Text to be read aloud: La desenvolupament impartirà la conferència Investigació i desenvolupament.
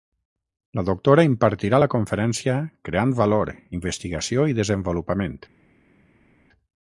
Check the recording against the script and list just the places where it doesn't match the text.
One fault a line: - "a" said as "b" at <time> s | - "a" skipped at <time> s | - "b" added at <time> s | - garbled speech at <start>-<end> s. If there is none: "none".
- "desenvolupament" said as "doctora" at 0.9 s
- "Creant valor" added at 2.9 s